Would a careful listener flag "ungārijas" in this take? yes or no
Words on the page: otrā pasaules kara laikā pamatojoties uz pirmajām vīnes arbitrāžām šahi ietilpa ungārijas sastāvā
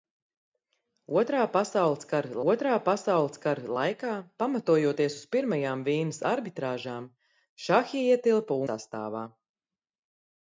yes